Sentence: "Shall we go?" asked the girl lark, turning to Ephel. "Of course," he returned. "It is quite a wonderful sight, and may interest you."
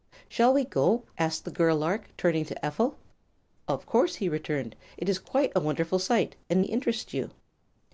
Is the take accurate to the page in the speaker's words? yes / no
no